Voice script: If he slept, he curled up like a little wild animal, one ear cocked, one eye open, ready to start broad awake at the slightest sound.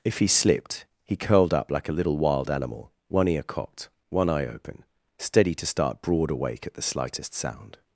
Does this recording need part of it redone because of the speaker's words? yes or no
yes